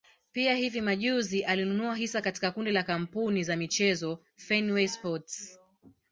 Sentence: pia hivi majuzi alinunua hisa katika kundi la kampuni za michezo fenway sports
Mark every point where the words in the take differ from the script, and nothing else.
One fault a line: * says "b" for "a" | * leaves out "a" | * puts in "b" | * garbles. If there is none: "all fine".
all fine